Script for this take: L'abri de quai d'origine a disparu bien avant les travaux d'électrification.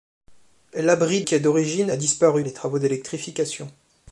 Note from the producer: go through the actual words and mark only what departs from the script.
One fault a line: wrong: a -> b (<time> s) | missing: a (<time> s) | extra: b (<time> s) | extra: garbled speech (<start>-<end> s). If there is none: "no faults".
missing: de (1.2 s)
missing: bien avant (2.4 s)